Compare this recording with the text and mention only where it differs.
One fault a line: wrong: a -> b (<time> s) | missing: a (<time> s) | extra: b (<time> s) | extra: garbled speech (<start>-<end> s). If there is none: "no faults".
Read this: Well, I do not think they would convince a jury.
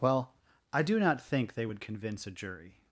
no faults